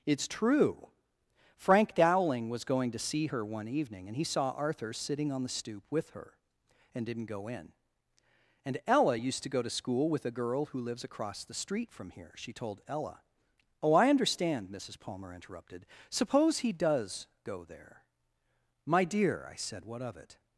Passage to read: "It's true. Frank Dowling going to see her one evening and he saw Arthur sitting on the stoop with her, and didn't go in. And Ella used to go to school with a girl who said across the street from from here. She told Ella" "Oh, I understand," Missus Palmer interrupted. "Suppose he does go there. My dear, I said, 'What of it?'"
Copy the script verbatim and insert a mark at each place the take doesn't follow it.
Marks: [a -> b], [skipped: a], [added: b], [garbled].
"It's true. Frank Dowling [added: was] going to see her one evening and he saw Arthur sitting on the stoop with her, and didn't go in. And Ella used to go to school with a girl who [said -> lives] across the street from [skipped: from] here. She told Ella" "Oh, I understand," Missus Palmer interrupted. "Suppose he does go there. My dear, I said, 'What of it?'"